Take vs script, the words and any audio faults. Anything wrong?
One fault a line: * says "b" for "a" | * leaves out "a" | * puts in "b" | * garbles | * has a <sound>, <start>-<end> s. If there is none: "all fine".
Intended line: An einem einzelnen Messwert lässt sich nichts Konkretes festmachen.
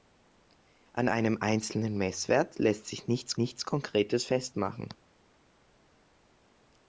* puts in "nichts"